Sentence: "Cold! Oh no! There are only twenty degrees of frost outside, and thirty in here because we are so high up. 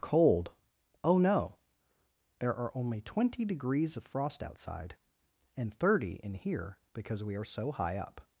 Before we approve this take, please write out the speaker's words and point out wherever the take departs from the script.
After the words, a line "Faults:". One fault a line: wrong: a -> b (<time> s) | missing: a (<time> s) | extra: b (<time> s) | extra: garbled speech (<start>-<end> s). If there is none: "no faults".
"Cold! Oh no! There are only twenty degrees of frost outside, and thirty in here because we are so high up.
Faults:
no faults